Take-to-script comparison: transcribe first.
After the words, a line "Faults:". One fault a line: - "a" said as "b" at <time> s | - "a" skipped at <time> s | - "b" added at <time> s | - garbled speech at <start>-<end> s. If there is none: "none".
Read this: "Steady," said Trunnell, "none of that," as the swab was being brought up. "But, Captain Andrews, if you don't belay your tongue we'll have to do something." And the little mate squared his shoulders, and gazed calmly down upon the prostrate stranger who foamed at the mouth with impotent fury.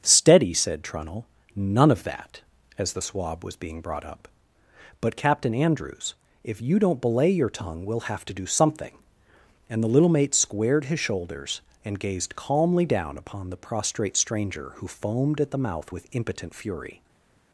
"Steady," said Trunnell, "none of that," as the swab was being brought up. "But, Captain Andrews, if you don't belay your tongue we'll have to do something." And the little mate squared his shoulders, and gazed calmly down upon the prostrate stranger who foamed at the mouth with impotent fury.
Faults:
none